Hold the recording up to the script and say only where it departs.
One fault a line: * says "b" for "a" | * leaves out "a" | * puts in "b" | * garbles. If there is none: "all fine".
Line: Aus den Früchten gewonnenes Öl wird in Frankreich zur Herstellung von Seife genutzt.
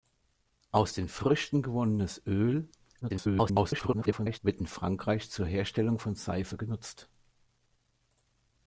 * garbles